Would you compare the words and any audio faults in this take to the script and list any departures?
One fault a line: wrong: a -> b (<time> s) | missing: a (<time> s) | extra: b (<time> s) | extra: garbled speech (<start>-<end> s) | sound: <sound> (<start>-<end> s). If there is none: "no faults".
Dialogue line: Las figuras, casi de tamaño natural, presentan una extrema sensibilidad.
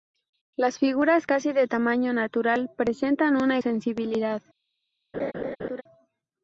missing: extrema (3.6 s)
sound: laugh (5.1-5.8 s)